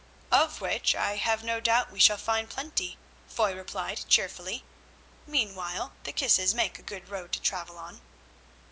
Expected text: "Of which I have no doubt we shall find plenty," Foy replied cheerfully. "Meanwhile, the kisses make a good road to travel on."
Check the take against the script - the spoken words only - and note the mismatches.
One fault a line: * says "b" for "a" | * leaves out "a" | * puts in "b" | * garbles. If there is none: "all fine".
all fine